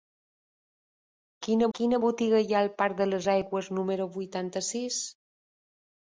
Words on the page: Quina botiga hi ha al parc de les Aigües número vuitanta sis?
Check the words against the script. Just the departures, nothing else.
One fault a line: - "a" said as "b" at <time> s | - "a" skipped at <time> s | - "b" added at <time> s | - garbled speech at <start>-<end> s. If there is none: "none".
- "quina" added at 1.8 s